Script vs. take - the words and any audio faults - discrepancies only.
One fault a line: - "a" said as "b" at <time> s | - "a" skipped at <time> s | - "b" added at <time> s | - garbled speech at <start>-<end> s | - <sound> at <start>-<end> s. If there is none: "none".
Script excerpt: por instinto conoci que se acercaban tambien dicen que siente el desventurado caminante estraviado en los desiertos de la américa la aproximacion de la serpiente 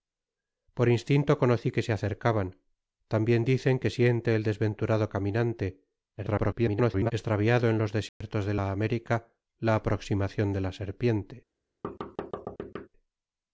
- garbled speech at 6.2-7.1 s
- dropout at 8.1-8.2 s
- thud at 11.8-12.9 s